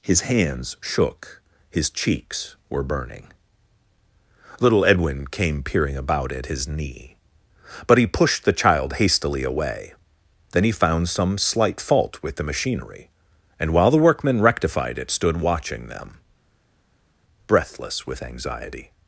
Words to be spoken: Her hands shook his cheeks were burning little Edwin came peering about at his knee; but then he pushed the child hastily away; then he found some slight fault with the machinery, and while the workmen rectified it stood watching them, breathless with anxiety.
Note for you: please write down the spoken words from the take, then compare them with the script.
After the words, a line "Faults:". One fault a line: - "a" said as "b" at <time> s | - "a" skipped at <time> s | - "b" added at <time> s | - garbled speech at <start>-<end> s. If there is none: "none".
His hands shook his cheeks were burning little Edwin came peering about at his knee; but he pushed the child hastily away; then he found some slight fault with the machinery, and while the workmen rectified it stood watching them, breathless with anxiety.
Faults:
- "Her" said as "His" at 0.0 s
- "then" skipped at 8.0 s